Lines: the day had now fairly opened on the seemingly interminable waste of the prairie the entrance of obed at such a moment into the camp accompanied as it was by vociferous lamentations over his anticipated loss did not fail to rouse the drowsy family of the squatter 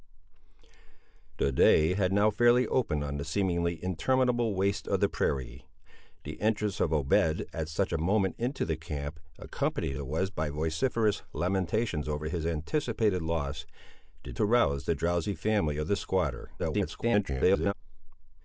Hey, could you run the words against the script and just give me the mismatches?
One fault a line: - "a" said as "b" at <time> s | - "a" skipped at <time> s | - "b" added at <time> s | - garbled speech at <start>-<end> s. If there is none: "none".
- "as" skipped at 10.0 s
- "not fail" skipped at 14.4 s
- garbled speech at 16.6-17.7 s